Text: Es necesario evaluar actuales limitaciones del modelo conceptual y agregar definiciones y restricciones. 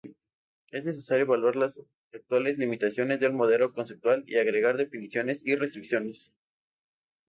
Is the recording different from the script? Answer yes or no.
yes